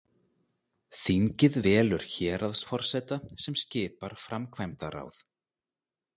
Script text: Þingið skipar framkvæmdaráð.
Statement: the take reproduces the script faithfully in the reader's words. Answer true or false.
false